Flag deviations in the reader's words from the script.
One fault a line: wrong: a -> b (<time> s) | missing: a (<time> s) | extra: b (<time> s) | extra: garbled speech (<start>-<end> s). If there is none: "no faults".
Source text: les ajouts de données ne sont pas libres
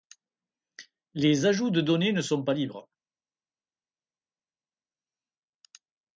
no faults